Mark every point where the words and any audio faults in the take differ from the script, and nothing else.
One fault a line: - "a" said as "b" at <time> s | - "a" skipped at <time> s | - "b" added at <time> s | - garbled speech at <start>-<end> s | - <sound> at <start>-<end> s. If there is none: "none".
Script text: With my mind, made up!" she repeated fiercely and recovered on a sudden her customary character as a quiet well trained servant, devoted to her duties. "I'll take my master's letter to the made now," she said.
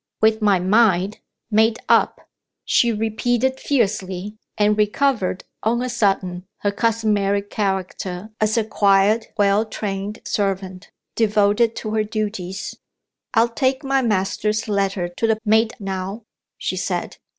none